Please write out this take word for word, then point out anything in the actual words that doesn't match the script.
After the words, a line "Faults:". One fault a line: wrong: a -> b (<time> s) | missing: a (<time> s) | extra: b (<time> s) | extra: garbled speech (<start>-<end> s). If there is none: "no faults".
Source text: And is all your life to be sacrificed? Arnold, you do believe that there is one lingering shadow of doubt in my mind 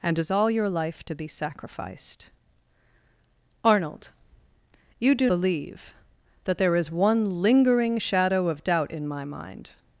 And is all your life to be sacrificed? Arnold, you do believe that there is one lingering shadow of doubt in my mind
Faults:
no faults